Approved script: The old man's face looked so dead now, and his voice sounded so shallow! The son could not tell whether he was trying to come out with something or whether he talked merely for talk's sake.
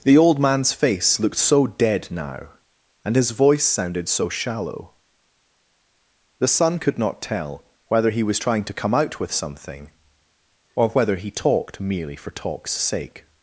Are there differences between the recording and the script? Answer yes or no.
no